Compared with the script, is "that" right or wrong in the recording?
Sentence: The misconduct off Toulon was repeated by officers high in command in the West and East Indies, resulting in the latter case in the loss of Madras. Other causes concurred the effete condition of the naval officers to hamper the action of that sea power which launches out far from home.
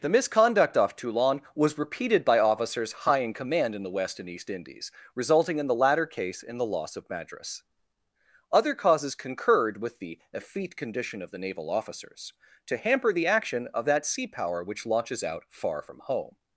right